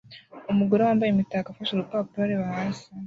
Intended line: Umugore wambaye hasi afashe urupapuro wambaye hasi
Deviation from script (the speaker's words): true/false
true